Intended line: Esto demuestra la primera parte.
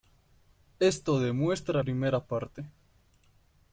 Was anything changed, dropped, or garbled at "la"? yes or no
yes